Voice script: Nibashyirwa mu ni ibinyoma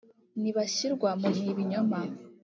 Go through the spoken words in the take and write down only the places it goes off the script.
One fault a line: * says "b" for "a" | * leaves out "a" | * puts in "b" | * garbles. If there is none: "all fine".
all fine